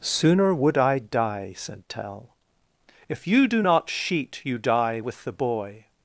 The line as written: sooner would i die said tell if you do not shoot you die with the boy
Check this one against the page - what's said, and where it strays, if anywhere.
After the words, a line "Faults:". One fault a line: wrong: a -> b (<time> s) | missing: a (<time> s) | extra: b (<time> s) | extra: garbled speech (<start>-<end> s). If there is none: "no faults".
sooner would i die said tell if you do not sheet you die with the boy
Faults:
wrong: shoot -> sheet (3.9 s)